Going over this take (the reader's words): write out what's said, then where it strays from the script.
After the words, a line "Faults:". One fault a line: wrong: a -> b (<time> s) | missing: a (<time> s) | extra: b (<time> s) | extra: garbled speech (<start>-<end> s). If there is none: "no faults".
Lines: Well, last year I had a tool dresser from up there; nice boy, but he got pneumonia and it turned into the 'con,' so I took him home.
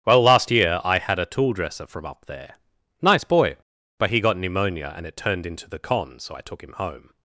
Well, last year I had a tool dresser from up there; nice boy, but he got pneumonia and it turned into the 'con,' so I took him home.
Faults:
no faults